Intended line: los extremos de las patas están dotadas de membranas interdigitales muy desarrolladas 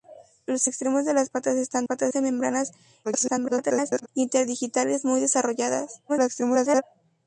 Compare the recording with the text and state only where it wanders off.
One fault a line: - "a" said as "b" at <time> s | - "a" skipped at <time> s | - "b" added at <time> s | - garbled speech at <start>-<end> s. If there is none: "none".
- "dotadas" said as "patas" at 1.8 s
- garbled speech at 3.0-4.1 s
- garbled speech at 6.1-6.8 s